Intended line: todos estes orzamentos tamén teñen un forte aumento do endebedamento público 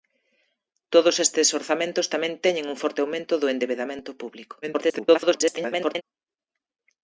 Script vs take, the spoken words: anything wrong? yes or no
yes